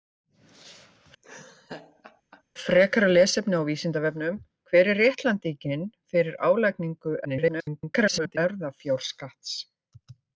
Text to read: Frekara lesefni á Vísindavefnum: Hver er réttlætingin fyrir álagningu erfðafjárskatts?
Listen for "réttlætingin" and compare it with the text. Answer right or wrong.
right